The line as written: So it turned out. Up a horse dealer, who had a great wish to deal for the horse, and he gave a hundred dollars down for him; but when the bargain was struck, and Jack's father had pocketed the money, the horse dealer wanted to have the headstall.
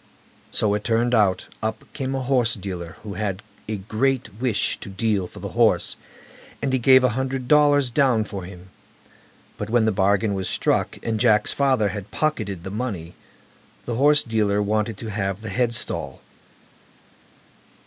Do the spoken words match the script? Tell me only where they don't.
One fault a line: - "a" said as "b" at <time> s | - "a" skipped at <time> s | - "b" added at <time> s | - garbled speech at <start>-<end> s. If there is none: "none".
- "came" added at 1.9 s